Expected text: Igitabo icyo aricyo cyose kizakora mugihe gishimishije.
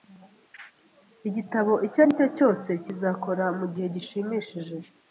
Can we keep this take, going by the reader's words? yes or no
yes